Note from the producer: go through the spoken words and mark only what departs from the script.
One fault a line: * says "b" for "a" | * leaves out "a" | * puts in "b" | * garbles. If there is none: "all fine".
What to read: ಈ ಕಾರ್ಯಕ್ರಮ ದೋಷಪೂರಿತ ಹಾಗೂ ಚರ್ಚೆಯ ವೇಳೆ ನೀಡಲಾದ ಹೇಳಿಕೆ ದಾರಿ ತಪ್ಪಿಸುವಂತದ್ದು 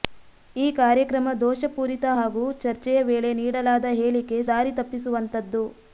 all fine